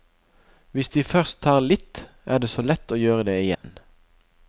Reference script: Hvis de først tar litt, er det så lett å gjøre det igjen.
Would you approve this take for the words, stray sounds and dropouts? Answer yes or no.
no